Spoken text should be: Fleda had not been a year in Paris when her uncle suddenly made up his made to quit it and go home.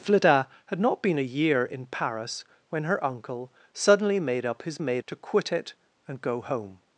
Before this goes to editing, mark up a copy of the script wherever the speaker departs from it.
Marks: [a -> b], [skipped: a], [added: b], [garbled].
Fleda had not been a year in Paris when her uncle suddenly made up his made to quit it and go home.